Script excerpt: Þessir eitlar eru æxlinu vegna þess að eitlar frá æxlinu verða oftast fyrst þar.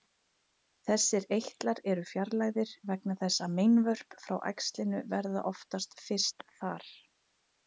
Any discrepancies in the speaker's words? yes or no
yes